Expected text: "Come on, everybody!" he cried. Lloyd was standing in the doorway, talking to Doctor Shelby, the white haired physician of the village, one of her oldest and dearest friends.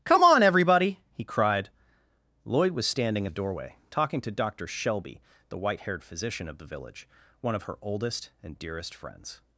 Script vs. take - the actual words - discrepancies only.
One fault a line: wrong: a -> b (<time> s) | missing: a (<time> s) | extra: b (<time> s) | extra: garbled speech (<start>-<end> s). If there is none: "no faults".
missing: in (3.2 s)